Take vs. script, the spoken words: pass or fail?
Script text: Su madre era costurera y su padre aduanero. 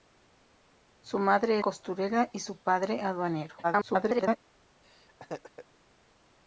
fail